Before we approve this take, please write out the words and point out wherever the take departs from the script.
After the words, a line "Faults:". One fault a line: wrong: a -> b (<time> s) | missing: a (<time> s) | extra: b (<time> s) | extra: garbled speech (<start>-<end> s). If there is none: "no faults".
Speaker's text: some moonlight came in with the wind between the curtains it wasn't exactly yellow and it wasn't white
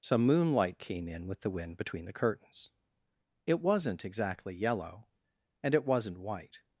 some moonlight came in with the wind between the curtains it wasn't exactly yellow and it wasn't white
Faults:
no faults